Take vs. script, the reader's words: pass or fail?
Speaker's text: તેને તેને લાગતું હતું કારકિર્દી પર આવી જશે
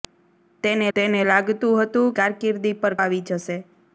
pass